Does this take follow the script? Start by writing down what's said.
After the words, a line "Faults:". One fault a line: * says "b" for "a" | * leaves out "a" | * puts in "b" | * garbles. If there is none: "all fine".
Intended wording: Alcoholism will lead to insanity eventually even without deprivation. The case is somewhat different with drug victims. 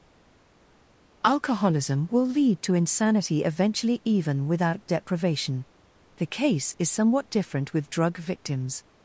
Alcoholism will lead to insanity eventually even without deprivation. The case is somewhat different with drug victims.
Faults:
all fine